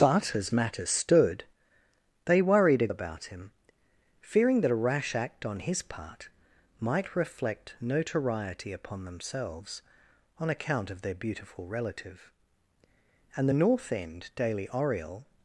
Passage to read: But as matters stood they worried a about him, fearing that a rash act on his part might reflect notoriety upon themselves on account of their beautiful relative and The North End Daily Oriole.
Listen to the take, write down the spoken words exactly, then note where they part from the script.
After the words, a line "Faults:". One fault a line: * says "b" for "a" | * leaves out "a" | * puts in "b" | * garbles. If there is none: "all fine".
But as matters stood they worried a about him, fearing that a rash act on his part might reflect notoriety upon themselves on account of their beautiful relative and The North End Daily Oriole.
Faults:
all fine